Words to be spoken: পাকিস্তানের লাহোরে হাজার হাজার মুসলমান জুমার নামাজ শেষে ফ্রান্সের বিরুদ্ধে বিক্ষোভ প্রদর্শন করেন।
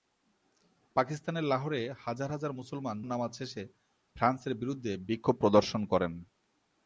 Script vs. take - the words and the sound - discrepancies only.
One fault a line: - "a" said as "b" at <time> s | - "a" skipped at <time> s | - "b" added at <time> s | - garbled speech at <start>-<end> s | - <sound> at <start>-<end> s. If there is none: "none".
- "জুমার" skipped at 3.0 s